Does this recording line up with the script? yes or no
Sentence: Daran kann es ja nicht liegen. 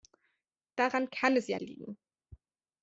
no